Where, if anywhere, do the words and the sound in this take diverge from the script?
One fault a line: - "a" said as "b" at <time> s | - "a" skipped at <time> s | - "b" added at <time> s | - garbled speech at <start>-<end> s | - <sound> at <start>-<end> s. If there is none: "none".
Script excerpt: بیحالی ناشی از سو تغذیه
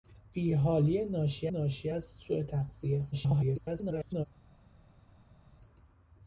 - "ناشی" added at 1.5 s
- garbled speech at 3.1-4.3 s